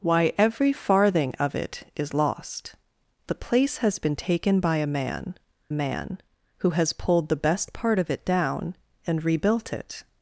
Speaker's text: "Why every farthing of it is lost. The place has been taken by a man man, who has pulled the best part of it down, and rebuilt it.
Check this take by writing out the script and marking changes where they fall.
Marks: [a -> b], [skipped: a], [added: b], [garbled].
"Why every farthing of it is lost. The place has been taken by a man man, who has pulled the best part of it down, and rebuilt it.